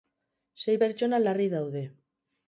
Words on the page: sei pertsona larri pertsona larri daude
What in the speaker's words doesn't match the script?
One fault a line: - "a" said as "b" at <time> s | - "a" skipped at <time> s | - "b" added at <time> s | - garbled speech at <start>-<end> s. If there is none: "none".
- "pertsona larri" skipped at 1.5 s